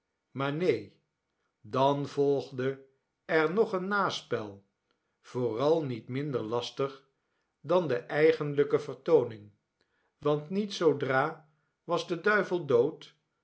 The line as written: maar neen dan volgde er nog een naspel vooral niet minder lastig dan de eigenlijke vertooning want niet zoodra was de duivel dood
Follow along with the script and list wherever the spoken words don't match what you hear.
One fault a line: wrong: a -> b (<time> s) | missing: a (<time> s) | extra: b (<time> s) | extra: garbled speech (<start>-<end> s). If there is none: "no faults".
no faults